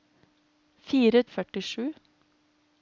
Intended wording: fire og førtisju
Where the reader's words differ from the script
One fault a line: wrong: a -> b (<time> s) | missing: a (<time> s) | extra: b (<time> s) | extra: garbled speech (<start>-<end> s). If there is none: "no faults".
no faults